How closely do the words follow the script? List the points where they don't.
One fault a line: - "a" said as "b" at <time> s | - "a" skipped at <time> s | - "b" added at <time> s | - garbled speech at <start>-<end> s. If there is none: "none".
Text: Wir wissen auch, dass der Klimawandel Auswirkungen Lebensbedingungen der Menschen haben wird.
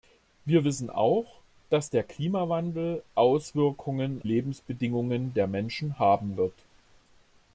none